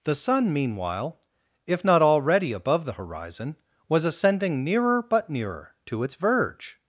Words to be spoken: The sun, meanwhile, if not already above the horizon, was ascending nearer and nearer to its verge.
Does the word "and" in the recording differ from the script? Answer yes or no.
yes